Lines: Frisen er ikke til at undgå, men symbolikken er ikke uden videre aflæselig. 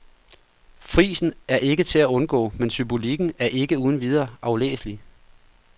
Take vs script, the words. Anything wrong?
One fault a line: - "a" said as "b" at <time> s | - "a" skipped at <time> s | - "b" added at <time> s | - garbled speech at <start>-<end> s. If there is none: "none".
none